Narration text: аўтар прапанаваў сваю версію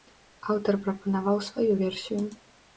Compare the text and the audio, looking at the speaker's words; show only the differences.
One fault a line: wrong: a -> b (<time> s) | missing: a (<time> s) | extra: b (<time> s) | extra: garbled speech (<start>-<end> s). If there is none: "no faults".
no faults